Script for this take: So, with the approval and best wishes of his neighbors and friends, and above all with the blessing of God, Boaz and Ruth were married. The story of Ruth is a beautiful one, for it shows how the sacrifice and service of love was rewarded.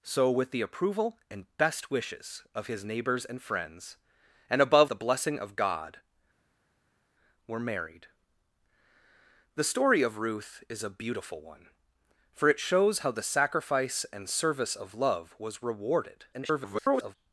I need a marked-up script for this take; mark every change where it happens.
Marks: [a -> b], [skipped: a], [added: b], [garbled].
So, with the approval and best wishes of his neighbors and friends, and above [skipped: all with] the blessing of God, [skipped: Boaz and Ruth] were married. The story of Ruth is a beautiful one, for it shows how the sacrifice and service of love was rewarded. [garbled]